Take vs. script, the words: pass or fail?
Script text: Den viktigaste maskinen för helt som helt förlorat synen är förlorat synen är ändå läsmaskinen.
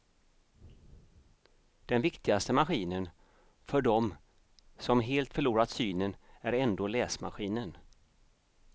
fail